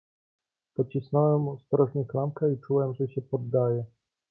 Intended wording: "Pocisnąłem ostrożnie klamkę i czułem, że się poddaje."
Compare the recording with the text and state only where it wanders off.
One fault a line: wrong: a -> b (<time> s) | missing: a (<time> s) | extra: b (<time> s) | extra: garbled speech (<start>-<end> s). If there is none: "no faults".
no faults